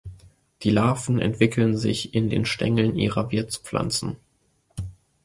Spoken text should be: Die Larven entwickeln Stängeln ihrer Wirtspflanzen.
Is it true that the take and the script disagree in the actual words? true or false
true